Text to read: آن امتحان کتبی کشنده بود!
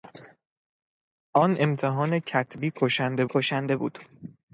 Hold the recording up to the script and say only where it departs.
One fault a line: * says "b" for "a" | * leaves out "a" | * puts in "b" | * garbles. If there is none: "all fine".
* puts in "کشنده"